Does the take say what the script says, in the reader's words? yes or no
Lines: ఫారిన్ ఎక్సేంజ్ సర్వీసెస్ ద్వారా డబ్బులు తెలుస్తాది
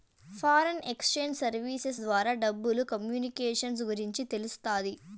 no